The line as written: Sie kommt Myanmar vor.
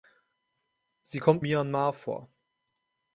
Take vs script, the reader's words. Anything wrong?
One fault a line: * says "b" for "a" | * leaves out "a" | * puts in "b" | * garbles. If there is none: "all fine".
all fine